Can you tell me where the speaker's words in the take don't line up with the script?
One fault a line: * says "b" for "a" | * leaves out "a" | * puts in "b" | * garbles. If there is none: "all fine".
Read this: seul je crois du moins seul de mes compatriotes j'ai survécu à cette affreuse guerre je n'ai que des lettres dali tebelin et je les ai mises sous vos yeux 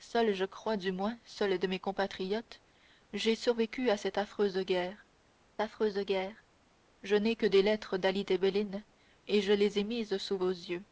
* puts in "affreuse guerre"